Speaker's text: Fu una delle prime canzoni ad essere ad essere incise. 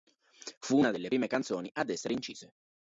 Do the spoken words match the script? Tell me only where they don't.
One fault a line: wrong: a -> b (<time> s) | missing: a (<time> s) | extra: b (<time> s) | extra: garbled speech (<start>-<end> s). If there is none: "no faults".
missing: ad essere (2.1 s)